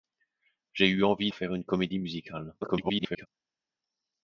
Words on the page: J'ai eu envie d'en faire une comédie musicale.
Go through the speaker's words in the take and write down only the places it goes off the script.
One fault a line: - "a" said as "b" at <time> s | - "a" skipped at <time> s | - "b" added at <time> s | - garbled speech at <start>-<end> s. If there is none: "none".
- "d'en" skipped at 1.3 s
- garbled speech at 2.6-3.3 s